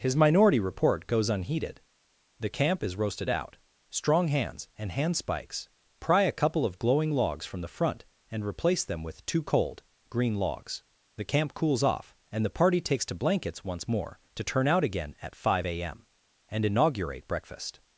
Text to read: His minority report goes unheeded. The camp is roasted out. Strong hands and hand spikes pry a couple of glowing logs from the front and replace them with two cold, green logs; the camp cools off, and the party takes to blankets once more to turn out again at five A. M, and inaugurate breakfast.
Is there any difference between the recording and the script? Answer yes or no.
no